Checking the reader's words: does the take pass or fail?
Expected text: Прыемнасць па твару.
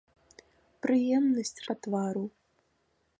pass